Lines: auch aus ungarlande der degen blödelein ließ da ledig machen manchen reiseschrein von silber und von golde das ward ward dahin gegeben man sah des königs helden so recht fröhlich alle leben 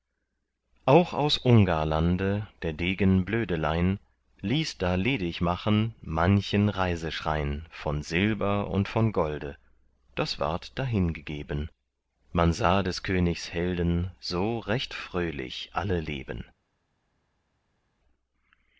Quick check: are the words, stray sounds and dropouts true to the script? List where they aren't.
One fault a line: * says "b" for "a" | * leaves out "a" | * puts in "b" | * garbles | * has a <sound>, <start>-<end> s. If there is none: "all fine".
* leaves out "ward"